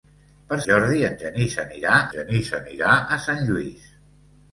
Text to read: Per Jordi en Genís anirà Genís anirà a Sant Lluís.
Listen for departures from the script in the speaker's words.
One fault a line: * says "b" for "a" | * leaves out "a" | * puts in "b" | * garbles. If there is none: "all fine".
all fine